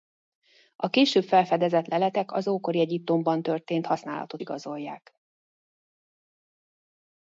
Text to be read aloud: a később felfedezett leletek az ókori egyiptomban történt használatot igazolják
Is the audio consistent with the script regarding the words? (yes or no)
yes